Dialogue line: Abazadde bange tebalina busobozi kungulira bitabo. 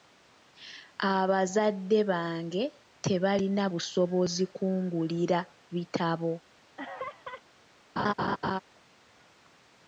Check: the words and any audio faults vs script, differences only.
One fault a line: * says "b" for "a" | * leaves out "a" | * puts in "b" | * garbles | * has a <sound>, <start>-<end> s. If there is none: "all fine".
* has a laugh, 6.8-7.4 s
* has a laugh, 8.0-8.6 s